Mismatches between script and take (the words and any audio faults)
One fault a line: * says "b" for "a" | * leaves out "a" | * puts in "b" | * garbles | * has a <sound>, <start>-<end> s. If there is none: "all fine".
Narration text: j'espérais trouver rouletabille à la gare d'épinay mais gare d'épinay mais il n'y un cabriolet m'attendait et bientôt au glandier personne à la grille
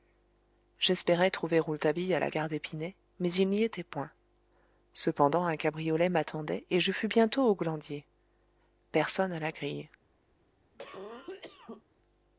* says "il n'y était point cependant" for "gare d'épinay mais il n'y"
* puts in "je fus"
* has a cough, 10.7-11.8 s